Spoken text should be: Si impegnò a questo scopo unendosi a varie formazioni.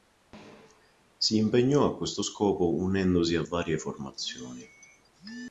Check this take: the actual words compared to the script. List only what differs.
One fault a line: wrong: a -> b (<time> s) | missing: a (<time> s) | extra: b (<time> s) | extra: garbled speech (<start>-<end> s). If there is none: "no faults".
no faults